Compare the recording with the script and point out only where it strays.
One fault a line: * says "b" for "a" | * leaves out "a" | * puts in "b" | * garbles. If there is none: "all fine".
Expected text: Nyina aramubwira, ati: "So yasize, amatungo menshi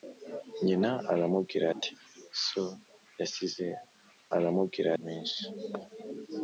* says "aramubwira" for "amatungo"